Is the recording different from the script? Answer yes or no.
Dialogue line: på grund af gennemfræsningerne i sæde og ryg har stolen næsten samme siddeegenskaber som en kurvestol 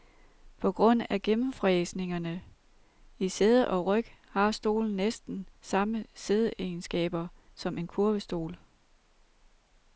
no